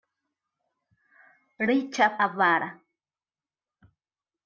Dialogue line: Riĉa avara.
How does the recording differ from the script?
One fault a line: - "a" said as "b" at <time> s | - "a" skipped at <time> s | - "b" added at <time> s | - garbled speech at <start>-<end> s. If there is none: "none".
none